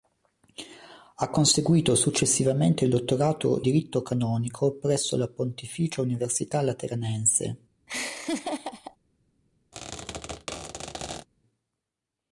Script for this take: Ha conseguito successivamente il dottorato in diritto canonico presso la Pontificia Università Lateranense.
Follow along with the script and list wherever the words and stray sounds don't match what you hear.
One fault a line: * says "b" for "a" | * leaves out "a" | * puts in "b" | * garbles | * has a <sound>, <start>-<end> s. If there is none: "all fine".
* leaves out "in"
* has a laugh, 7.9-9.0 s
* has a squeak, 9.7-11.3 s